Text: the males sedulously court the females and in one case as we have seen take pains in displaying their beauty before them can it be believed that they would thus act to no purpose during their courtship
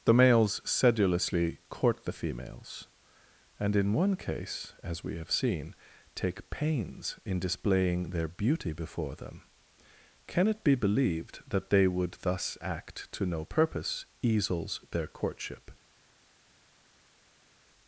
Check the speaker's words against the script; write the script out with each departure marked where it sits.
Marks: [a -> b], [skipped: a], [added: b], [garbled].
the males sedulously court the females and in one case as we have seen take pains in displaying their beauty before them can it be believed that they would thus act to no purpose [during -> easels] their courtship